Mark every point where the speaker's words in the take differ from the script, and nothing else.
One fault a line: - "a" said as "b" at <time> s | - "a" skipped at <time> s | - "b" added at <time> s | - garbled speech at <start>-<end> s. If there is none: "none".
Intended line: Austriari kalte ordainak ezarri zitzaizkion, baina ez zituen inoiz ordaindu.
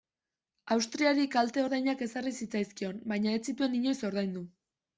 none